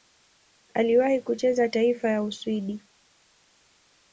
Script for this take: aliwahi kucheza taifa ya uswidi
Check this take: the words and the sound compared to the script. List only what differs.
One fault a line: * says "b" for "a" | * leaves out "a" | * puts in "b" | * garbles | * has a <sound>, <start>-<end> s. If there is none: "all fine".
all fine